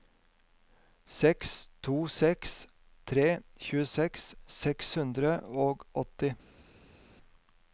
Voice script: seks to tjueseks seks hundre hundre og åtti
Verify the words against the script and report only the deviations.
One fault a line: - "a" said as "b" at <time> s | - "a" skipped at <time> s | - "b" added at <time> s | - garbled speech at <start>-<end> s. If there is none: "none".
- "seks tre" added at 2.2 s
- "hundre" skipped at 5.3 s